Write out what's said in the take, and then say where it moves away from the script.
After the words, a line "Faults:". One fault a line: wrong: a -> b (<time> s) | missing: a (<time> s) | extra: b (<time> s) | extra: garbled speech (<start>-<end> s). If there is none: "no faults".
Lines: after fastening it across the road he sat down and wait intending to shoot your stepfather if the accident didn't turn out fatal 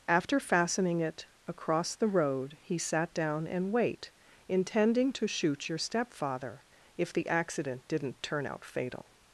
after fastening it across the road he sat down and wait intending to shoot your stepfather if the accident didn't turn out fatal
Faults:
no faults